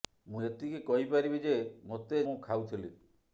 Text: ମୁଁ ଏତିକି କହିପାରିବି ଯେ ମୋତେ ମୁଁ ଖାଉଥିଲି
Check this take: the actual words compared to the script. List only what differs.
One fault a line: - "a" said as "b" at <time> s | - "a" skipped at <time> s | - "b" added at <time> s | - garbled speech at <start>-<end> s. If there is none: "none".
none